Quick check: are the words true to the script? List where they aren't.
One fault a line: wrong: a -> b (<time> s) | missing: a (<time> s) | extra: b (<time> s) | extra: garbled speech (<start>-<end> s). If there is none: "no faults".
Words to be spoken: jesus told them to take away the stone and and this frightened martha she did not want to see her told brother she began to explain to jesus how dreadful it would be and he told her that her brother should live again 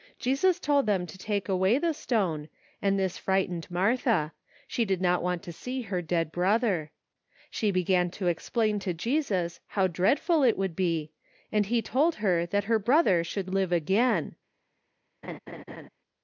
missing: and (3.0 s)
wrong: told -> dead (6.0 s)